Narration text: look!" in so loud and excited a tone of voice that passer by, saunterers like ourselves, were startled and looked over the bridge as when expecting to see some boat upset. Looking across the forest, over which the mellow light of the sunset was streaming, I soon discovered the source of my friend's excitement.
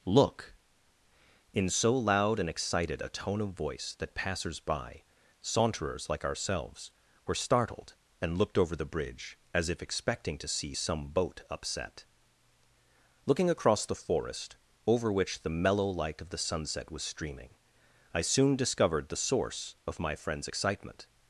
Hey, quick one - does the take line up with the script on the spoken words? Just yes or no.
no